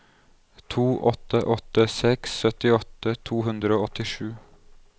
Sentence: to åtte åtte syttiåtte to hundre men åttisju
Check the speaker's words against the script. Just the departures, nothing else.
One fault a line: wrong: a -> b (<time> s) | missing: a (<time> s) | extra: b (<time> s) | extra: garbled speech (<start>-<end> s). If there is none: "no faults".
extra: seks (2.0 s)
wrong: men -> og (3.8 s)